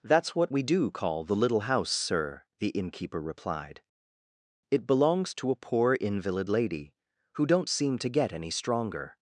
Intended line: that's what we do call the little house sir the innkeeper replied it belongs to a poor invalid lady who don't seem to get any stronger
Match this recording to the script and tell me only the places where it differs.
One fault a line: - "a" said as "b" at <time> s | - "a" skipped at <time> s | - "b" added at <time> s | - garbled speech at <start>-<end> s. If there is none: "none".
none